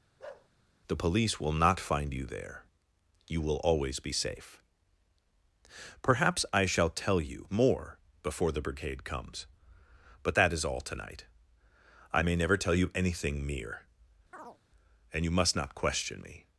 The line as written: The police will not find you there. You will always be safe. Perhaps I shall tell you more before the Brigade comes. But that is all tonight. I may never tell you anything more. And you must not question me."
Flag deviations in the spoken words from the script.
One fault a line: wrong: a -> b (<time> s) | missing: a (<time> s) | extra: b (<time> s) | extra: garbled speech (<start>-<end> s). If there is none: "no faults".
wrong: more -> mere (13.5 s)